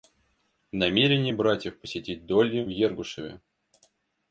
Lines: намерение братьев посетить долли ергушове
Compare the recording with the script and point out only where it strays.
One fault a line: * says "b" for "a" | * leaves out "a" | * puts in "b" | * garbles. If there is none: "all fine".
all fine